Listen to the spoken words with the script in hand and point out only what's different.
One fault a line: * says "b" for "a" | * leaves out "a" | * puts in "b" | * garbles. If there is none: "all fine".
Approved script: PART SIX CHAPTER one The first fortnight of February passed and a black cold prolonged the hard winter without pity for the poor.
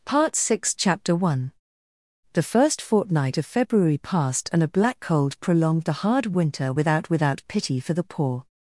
* puts in "without"